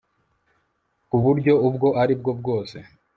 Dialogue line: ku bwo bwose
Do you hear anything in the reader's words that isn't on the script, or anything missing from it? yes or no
yes